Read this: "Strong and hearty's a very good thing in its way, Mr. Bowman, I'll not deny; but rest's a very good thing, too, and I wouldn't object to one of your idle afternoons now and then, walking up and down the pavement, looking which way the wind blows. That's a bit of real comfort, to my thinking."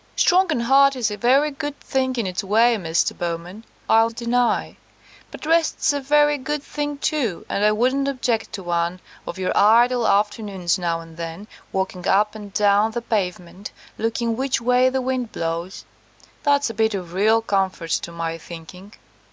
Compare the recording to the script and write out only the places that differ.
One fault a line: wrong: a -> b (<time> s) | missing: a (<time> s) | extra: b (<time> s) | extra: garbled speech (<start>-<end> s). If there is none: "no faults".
missing: not (4.1 s)